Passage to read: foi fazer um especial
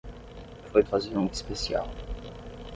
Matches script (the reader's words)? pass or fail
pass